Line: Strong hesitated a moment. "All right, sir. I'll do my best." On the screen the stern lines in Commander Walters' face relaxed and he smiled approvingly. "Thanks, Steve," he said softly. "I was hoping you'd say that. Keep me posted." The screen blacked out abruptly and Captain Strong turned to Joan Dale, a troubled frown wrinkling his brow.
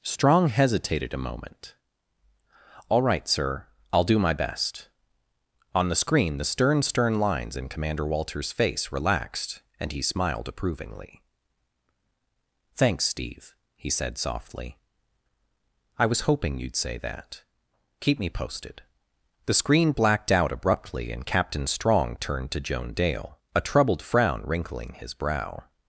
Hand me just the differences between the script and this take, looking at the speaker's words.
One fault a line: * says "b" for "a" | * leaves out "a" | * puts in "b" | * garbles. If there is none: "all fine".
* puts in "stern"